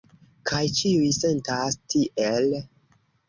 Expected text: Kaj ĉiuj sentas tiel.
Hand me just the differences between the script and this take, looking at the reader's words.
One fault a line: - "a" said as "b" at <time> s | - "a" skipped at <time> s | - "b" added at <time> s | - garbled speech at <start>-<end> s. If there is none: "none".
none